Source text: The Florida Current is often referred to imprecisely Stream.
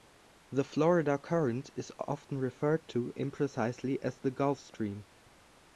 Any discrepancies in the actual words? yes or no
yes